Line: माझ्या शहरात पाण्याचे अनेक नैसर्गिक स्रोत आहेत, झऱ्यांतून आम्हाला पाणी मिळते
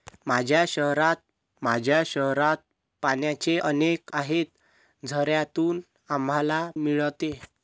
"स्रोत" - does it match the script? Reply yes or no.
no